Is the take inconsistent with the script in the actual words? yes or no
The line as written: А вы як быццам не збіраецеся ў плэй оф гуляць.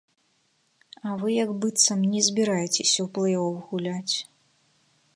no